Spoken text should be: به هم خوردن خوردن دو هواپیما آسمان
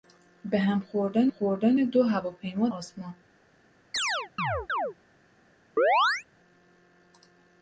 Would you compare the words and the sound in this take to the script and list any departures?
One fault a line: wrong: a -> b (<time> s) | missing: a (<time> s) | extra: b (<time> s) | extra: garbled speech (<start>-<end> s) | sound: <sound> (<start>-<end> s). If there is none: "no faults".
sound: chirp (3.9-4.9 s)
sound: chirp (5.8-6.2 s)